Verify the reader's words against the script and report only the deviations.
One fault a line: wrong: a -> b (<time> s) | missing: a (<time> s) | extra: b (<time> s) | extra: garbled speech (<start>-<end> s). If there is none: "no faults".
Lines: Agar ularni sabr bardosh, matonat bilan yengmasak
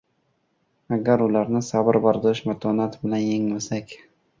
no faults